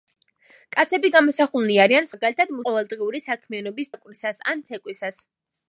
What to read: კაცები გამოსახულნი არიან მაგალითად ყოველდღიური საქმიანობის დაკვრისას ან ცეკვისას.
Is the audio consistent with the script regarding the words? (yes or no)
yes